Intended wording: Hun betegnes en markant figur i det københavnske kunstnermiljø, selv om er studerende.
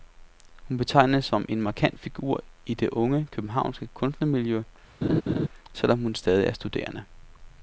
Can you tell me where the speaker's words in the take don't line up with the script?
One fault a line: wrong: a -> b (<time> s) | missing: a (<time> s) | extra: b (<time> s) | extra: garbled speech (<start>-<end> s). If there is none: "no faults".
extra: som (1.2 s)
extra: unge (2.9 s)
extra: hun stadig (6.0 s)